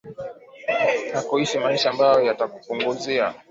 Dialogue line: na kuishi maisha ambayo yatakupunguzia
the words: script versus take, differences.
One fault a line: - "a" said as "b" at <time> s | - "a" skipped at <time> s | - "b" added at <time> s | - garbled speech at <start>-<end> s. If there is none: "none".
none